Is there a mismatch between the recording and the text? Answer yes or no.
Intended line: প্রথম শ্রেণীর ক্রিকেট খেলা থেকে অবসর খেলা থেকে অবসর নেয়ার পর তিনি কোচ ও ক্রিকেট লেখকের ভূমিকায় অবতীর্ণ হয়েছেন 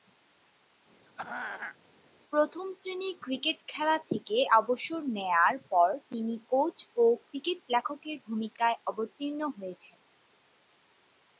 yes